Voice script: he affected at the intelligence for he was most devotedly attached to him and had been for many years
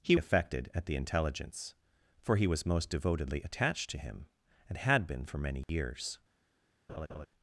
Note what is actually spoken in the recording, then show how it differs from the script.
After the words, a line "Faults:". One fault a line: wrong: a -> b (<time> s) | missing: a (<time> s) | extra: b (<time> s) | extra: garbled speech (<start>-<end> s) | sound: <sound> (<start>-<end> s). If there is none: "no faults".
he affected at the intelligence for he was most devotedly attached to him and had been for many years
Faults:
sound: dropout (5.6-5.7 s)
sound: laugh (6.9-7.3 s)